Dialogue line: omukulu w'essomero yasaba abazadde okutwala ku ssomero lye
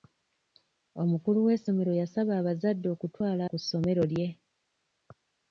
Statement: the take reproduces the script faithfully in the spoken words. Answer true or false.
true